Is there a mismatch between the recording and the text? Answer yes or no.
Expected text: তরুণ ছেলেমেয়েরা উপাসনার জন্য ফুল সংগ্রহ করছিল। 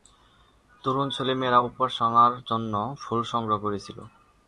no